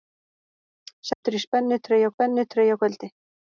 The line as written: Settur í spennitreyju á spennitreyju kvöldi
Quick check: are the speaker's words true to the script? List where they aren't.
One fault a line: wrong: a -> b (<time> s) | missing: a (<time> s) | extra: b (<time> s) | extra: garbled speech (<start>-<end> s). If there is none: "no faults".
no faults